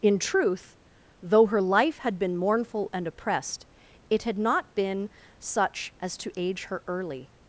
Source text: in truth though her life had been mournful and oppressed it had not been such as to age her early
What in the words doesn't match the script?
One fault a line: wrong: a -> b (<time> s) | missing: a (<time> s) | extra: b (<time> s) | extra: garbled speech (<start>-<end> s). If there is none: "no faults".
no faults